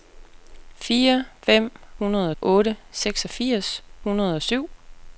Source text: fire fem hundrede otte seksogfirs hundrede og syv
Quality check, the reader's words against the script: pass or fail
pass